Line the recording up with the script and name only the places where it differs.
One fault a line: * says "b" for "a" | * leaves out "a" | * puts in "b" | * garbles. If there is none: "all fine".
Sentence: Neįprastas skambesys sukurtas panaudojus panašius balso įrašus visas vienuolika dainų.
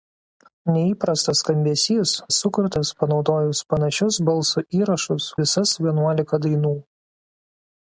all fine